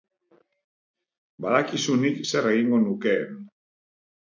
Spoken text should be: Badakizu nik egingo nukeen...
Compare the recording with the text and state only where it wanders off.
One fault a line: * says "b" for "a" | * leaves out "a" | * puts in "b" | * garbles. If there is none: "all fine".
* puts in "zer"